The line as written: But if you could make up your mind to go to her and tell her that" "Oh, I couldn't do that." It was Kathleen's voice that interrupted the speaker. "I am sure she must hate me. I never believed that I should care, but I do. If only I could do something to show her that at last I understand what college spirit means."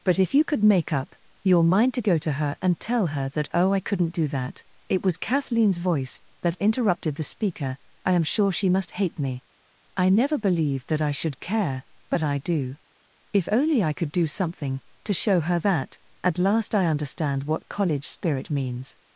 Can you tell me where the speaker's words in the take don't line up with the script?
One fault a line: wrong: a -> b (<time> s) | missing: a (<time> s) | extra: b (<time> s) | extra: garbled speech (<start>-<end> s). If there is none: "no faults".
no faults